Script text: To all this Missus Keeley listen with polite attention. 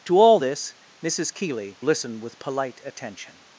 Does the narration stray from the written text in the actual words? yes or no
no